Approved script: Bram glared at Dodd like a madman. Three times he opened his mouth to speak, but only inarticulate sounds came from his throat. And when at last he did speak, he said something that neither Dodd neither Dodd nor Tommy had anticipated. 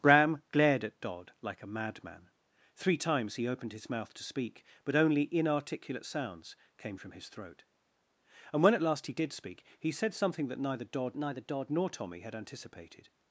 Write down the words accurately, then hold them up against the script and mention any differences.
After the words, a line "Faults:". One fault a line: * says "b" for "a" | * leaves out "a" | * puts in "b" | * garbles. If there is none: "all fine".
Bram glared at Dodd like a madman. Three times he opened his mouth to speak, but only inarticulate sounds came from his throat. And when at last he did speak, he said something that neither Dodd neither Dodd nor Tommy had anticipated.
Faults:
all fine